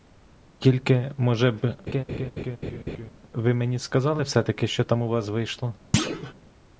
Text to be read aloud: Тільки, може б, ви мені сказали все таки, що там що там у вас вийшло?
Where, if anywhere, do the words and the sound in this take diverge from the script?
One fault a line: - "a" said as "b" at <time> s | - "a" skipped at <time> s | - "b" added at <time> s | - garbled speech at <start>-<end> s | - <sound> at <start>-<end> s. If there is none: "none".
- laugh at 1.9-3.1 s
- "що там" skipped at 5.0 s
- thud at 5.9-6.3 s